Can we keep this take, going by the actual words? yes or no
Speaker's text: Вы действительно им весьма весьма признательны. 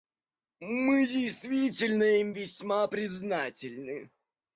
no